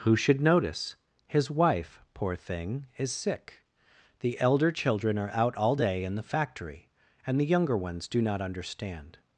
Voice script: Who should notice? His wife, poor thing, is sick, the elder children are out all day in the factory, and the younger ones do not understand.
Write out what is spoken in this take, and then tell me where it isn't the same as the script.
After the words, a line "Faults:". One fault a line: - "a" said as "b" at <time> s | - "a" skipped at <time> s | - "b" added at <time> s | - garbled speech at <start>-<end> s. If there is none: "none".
Who should notice? His wife, poor thing, is sick, the elder children are out all day in the factory, and the younger ones do not understand.
Faults:
none